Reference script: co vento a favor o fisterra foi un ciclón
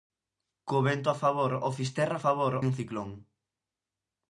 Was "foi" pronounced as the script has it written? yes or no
no